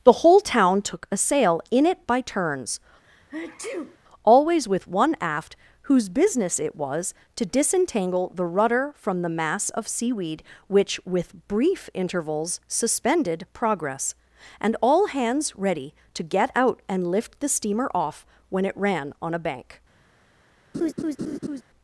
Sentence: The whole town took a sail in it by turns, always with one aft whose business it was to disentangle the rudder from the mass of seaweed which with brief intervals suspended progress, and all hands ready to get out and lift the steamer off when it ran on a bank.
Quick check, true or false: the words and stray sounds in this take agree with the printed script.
false